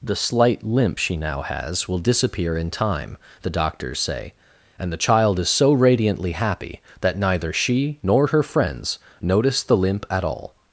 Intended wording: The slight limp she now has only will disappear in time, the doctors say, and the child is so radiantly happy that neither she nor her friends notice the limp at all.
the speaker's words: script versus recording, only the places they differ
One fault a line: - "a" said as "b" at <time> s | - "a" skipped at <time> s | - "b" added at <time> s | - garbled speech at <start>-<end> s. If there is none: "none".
- "only" skipped at 1.9 s